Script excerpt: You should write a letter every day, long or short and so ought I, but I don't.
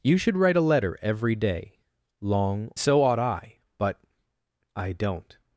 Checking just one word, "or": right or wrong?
wrong